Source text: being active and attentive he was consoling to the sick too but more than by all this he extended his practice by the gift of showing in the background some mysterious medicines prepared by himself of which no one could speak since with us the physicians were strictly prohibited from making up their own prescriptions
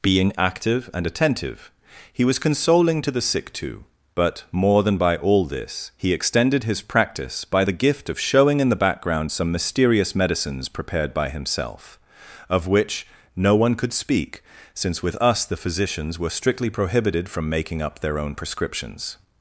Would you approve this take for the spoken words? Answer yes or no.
yes